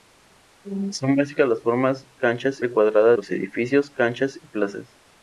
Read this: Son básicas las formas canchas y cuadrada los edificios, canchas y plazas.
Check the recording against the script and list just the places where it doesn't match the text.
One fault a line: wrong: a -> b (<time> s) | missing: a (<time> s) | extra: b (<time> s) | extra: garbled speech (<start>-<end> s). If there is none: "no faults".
no faults